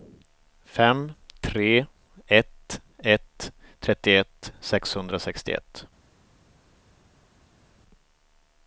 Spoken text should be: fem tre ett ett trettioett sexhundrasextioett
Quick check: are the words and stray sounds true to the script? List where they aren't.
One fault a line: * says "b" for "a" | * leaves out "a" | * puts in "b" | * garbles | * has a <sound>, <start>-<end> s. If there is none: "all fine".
all fine